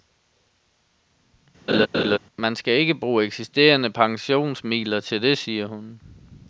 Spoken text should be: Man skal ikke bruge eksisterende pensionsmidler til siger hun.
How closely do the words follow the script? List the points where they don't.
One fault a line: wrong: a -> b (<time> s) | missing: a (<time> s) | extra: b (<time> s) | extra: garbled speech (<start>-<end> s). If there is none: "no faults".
extra: det (5.2 s)